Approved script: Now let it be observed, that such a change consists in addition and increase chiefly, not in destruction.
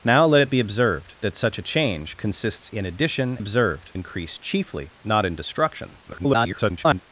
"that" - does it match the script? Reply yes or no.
yes